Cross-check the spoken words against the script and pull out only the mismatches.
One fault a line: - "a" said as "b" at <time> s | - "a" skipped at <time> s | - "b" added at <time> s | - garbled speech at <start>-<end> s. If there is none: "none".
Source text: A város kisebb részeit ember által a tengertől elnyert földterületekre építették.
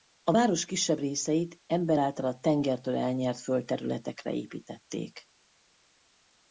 none